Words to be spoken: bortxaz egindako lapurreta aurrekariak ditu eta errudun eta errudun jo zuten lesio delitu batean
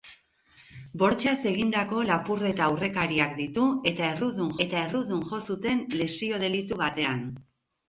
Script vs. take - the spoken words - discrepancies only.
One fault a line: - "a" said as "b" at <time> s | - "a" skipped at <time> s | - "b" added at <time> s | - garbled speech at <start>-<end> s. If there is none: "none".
none